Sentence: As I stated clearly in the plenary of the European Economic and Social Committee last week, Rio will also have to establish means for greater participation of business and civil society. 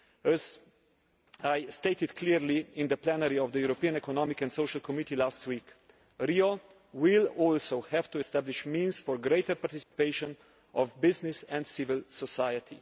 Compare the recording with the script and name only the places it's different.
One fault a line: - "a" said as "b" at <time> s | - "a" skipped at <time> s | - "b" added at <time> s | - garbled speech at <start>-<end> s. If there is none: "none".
none